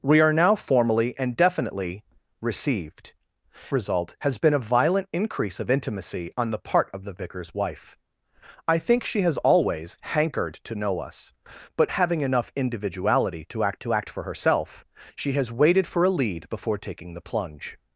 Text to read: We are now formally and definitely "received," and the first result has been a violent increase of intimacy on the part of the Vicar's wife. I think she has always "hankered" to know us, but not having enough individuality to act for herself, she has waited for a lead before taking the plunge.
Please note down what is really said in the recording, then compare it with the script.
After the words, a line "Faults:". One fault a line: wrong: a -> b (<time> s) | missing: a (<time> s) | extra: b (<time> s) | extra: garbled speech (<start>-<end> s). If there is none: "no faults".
We are now formally and definitely "received," result has been a violent increase of intimacy on the part of the Vicar's wife. I think she has always "hankered" to know us, but having enough individuality to act to act for herself, she has waited for a lead before taking the plunge.
Faults:
missing: and the first (3.1 s)
missing: not (11.9 s)
extra: to act (13.8 s)